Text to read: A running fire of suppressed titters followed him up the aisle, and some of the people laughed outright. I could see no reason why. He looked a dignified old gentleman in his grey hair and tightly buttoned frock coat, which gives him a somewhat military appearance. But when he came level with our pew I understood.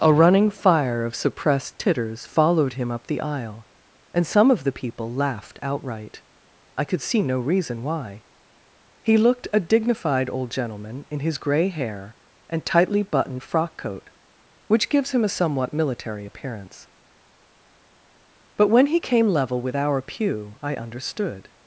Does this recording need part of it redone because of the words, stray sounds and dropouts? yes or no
no